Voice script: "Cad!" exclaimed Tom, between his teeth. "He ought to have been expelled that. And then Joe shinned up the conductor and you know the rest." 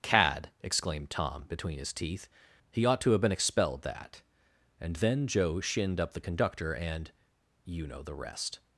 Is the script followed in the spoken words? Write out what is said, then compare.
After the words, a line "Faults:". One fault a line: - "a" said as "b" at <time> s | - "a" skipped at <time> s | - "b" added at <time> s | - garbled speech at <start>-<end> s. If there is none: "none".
"Cad!" exclaimed Tom, between his teeth. "He ought to have been expelled that. And then Joe shinned up the conductor and you know the rest."
Faults:
none